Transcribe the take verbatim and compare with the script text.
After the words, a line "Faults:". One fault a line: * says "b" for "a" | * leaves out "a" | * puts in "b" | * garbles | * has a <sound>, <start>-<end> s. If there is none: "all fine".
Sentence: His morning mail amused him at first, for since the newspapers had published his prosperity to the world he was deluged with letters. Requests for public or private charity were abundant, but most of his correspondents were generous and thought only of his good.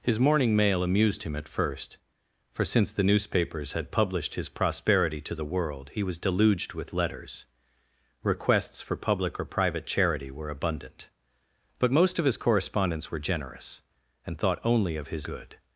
His morning mail amused him at first, for since the newspapers had published his prosperity to the world he was deluged with letters. Requests for public or private charity were abundant, but most of his correspondents were generous and thought only of his good.
Faults:
all fine